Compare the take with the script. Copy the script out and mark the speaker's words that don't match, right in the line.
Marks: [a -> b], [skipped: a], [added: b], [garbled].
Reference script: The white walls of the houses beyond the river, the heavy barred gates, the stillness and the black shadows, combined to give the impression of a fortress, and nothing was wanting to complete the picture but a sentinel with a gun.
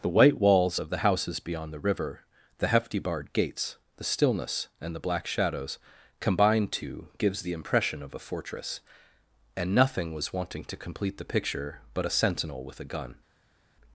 The white walls of the houses beyond the river, the [heavy -> hefty] barred gates, the stillness and the black shadows, combined to [give -> gives] the impression of a fortress, and nothing was wanting to complete the picture but a sentinel with a gun.